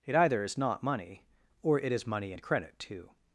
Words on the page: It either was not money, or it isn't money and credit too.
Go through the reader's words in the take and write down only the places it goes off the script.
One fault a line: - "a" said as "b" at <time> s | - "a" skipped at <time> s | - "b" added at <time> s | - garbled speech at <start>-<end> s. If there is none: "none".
- "was" said as "is" at 0.4 s
- "isn't" said as "is" at 1.9 s